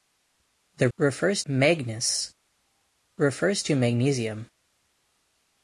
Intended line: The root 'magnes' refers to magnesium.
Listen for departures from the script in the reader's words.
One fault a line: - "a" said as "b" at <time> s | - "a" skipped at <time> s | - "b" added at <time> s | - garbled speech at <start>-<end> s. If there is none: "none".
- "root" said as "refers" at 1.0 s